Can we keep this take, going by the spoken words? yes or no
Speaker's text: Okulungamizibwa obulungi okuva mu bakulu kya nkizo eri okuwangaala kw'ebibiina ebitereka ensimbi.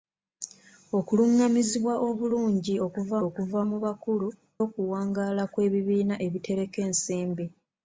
no